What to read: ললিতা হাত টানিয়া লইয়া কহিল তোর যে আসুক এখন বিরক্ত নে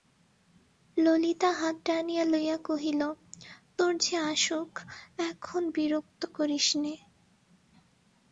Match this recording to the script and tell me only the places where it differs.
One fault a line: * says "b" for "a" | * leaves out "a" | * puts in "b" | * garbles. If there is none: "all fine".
* puts in "করিস"